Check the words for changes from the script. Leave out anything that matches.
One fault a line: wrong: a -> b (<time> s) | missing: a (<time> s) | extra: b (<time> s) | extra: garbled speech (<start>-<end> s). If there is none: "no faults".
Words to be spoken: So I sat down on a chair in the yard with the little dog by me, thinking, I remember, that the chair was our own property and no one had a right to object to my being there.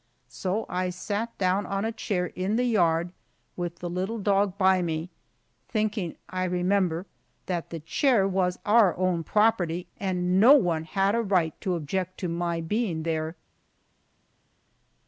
no faults